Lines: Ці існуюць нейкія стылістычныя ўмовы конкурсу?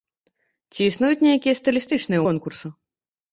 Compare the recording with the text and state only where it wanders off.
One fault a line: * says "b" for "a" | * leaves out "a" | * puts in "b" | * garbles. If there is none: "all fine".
* leaves out "ўмовы"